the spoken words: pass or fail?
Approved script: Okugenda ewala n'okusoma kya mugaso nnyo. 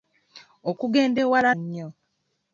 fail